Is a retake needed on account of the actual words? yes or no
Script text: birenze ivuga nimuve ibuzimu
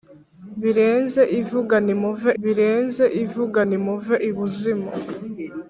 yes